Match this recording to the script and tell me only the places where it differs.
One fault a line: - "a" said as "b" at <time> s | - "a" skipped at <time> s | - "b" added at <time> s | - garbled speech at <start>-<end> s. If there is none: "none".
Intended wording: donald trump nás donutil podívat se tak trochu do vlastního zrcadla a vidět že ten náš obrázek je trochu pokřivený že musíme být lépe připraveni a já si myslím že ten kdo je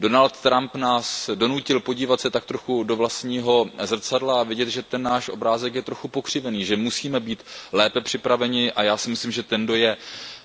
none